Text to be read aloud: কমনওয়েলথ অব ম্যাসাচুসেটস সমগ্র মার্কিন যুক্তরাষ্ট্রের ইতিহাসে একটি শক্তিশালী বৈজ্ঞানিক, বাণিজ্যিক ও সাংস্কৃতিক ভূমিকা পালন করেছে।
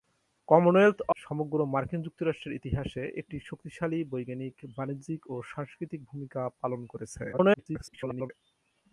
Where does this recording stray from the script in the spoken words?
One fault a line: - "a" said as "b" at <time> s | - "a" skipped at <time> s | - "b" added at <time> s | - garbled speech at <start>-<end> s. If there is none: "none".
- "অব ম্যাসাচুসেটস" skipped at 1.0 s
- garbled speech at 7.3-8.3 s